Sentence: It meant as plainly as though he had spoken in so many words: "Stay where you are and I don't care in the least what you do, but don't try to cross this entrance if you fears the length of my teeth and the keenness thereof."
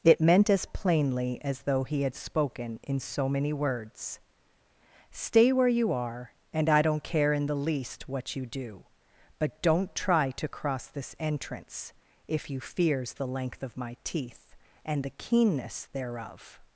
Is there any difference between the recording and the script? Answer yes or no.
no